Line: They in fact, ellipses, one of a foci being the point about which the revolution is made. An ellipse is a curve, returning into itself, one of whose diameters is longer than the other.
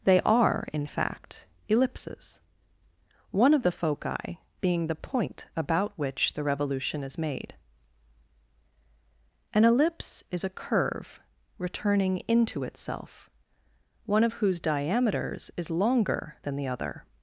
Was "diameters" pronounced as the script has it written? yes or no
yes